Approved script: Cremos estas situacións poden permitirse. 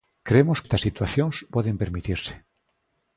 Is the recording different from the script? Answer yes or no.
no